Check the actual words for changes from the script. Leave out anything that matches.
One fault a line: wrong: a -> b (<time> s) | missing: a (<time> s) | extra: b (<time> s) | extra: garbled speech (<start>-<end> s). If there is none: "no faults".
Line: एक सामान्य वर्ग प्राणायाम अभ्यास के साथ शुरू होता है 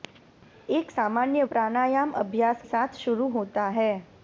missing: वर्ग (1.4 s)
missing: के (2.6 s)